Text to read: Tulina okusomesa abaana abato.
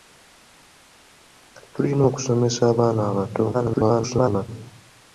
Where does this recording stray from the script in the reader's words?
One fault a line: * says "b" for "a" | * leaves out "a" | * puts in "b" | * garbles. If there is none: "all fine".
* garbles